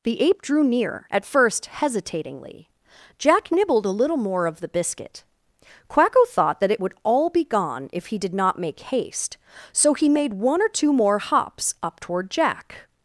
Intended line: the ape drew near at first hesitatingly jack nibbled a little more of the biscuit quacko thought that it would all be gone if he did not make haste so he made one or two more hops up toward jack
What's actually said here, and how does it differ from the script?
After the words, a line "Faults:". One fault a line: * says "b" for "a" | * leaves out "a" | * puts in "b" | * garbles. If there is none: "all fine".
the ape drew near at first hesitatingly jack nibbled a little more of the biscuit quacko thought that it would all be gone if he did not make haste so he made one or two more hops up toward jack
Faults:
all fine